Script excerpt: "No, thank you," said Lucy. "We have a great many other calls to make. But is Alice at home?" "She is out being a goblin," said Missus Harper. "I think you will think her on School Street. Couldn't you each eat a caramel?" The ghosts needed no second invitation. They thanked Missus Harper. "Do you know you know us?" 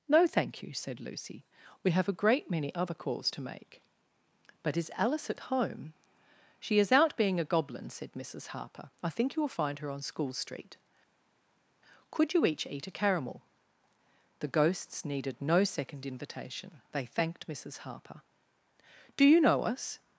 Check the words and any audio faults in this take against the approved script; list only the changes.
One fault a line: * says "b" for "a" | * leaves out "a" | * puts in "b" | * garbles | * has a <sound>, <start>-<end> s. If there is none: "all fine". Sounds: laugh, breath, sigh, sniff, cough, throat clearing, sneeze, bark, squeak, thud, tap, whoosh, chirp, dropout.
* says "find" for "think"
* says "Could" for "Couldn't"
* leaves out "you know"